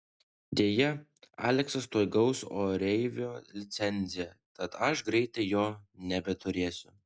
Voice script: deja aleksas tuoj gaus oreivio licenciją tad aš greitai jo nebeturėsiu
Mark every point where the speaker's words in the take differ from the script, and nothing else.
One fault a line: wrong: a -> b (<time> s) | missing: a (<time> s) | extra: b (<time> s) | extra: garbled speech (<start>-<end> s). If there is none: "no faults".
no faults